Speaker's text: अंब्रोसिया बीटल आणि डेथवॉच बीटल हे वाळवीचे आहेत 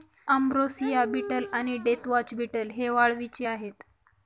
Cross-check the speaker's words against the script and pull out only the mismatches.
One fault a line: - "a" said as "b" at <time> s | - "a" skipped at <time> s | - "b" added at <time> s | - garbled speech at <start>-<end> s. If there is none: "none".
none